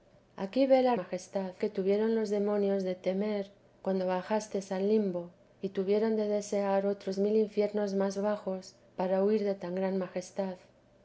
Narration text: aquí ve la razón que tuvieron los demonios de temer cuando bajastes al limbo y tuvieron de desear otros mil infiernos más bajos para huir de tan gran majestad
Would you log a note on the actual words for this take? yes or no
yes